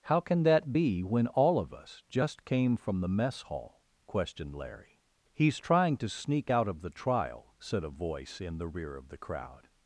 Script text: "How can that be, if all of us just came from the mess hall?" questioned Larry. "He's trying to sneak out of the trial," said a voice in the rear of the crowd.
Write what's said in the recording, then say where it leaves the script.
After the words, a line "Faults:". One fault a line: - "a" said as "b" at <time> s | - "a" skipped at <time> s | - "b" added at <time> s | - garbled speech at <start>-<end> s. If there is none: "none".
"How can that be, when all of us just came from the mess hall?" questioned Larry. "He's trying to sneak out of the trial," said a voice in the rear of the crowd.
Faults:
- "if" said as "when" at 1.0 s